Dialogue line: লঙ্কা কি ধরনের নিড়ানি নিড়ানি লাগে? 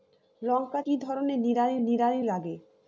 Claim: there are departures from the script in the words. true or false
false